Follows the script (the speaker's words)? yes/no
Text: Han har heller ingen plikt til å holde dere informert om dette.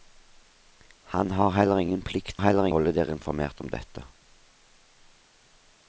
no